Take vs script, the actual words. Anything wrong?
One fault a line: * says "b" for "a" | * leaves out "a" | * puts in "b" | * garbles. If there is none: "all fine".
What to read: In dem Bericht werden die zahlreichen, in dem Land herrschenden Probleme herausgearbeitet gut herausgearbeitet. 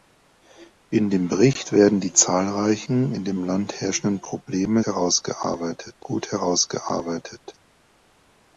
all fine